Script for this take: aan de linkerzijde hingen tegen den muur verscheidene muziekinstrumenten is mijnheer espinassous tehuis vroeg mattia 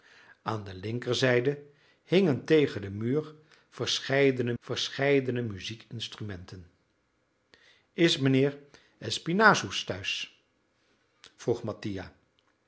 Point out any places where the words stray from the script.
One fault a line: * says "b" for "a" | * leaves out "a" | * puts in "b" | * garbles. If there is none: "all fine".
* puts in "verscheidene"